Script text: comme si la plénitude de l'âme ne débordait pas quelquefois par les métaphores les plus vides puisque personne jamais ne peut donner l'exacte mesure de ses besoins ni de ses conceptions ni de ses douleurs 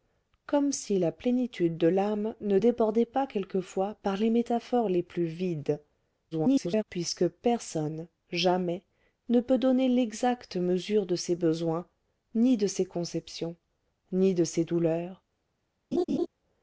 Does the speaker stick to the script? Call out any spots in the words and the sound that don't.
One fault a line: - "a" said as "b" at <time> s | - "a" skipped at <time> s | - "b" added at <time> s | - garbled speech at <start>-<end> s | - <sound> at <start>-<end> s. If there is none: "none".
- garbled speech at 6.3-6.8 s
- laugh at 15.9-16.3 s